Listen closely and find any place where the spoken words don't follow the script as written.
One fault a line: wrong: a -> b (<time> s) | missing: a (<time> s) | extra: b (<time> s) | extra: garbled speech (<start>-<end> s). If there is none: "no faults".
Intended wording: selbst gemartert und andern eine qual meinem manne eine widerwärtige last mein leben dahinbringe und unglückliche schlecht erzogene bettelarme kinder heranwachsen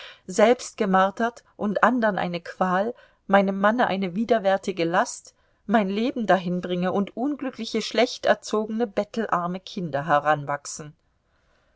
no faults